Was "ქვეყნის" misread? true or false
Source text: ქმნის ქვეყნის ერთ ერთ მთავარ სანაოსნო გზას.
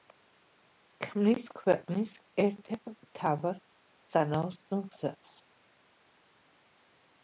false